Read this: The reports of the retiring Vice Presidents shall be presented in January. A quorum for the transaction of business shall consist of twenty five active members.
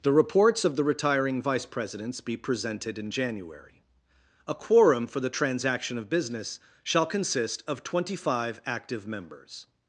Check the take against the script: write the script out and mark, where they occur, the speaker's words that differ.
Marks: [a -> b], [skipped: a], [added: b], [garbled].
The reports of the retiring Vice Presidents [skipped: shall] be presented in January. A quorum for the transaction of business shall consist of twenty five active members.